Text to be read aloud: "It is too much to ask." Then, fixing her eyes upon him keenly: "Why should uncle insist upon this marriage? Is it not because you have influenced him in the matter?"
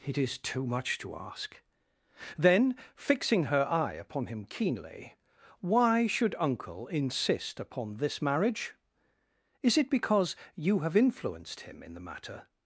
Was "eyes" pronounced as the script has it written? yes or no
no